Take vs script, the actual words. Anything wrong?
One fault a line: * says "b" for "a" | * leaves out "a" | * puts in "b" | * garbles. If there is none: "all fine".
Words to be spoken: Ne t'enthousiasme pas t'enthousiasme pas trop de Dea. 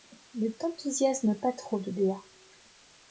* leaves out "t'enthousiasme pas"